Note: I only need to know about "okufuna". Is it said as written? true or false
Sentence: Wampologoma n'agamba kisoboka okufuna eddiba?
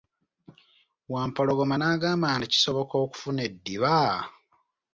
true